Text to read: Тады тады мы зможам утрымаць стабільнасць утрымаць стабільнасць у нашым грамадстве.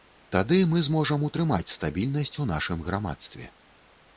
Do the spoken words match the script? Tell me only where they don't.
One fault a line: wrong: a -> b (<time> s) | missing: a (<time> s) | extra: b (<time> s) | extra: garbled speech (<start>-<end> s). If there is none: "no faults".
missing: тады (0.6 s)
missing: утрымаць стабільнасць (2.4 s)